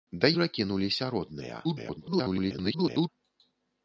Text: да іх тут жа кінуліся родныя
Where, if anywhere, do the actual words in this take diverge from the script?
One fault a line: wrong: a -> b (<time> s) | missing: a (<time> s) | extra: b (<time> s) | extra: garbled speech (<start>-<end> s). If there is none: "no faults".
missing: іх тут (0.3 s)
extra: garbled speech (1.6-3.1 s)